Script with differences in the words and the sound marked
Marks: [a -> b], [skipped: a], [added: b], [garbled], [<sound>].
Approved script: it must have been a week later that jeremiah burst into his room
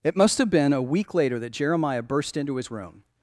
it must have been a week later that jeremiah burst into his room